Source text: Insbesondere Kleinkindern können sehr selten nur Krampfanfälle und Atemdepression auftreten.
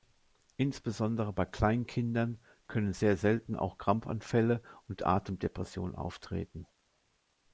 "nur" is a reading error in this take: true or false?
true